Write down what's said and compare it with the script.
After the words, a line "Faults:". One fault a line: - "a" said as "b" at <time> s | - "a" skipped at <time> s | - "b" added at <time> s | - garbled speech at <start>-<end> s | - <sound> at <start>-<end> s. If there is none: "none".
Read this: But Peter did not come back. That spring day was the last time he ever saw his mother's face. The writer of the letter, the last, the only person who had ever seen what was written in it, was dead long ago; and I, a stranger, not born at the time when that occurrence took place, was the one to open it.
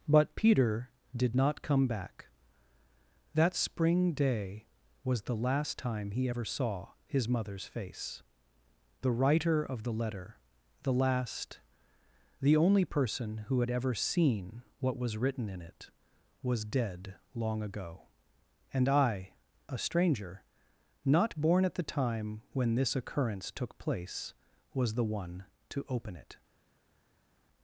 But Peter did not come back. That spring day was the last time he ever saw his mother's face. The writer of the letter, the last, the only person who had ever seen what was written in it, was dead long ago; and I, a stranger, not born at the time when this occurrence took place, was the one to open it.
Faults:
- "that" said as "this" at 22.7 s